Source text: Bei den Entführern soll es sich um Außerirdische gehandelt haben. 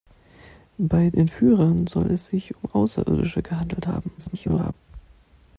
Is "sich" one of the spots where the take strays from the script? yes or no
no